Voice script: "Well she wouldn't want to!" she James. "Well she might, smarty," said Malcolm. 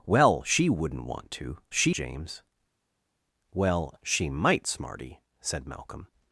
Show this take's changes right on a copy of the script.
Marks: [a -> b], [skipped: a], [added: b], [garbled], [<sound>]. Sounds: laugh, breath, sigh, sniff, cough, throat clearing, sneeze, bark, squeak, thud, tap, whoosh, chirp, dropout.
"Well she wouldn't want to!" she James. "Well she might, smarty," said Malcolm.